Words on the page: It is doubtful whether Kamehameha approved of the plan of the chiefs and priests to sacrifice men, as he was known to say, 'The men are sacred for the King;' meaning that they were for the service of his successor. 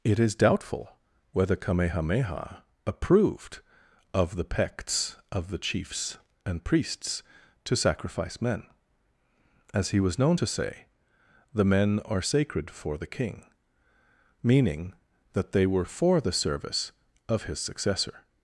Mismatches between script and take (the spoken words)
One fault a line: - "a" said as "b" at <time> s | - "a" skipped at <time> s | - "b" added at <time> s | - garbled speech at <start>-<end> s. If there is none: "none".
- "plan" said as "pects" at 4.4 s